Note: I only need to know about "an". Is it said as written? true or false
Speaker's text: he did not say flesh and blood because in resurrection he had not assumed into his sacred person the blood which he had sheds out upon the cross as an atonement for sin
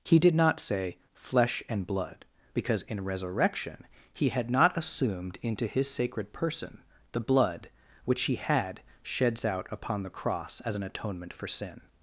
true